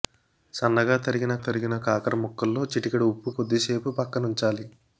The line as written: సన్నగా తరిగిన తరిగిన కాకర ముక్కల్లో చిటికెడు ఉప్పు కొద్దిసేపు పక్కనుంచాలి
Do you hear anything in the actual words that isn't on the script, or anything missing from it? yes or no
no